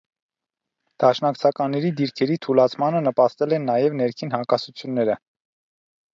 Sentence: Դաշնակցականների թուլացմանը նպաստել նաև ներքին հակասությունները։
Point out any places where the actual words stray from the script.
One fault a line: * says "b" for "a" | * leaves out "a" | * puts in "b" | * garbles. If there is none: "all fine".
* puts in "դիրքերի"
* puts in "են"